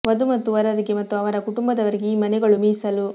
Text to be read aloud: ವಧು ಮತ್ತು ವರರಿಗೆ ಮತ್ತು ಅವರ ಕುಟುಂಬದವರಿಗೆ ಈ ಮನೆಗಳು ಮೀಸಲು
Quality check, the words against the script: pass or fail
pass